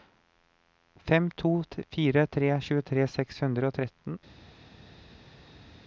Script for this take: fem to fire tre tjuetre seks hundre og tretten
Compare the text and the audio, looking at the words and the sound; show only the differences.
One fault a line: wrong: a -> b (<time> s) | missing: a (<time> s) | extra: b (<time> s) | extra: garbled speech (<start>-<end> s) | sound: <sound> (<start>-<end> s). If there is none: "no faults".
no faults